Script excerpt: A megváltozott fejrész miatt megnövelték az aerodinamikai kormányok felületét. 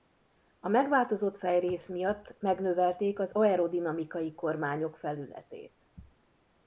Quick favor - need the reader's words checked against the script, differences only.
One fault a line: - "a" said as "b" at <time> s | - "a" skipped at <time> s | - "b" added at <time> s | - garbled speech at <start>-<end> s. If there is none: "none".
none